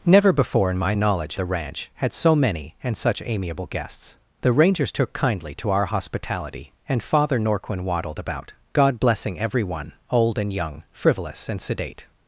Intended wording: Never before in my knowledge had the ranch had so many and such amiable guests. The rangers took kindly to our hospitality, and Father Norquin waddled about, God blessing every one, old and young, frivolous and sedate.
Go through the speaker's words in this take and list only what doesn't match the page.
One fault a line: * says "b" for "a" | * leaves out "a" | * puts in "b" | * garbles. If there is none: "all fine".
* leaves out "had"